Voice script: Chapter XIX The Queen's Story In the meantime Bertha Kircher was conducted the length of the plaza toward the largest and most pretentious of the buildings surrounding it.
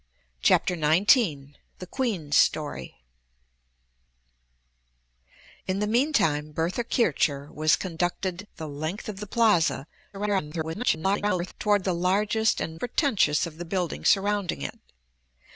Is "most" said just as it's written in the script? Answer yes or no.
no